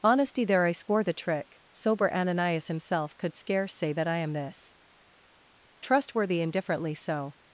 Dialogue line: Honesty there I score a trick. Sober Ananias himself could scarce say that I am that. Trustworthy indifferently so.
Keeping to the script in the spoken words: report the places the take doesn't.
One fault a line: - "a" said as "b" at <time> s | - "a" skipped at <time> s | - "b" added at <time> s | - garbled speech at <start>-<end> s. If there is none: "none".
- "a" said as "the" at 1.0 s
- "that" said as "this" at 4.3 s